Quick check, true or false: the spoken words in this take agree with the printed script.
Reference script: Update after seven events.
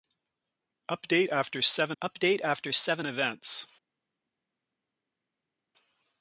false